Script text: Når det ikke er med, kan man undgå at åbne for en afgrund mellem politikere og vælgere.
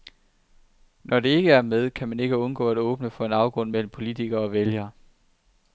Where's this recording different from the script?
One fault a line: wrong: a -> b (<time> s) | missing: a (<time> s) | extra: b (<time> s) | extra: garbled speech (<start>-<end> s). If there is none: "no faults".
extra: ikke (2.2 s)